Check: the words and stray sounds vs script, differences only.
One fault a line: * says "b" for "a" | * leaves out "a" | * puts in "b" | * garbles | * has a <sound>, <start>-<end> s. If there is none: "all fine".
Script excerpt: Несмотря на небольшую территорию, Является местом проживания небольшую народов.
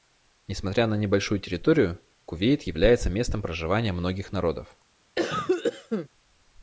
* puts in "Кувейт"
* says "многих" for "небольшую"
* has a cough, 5.2-6.1 s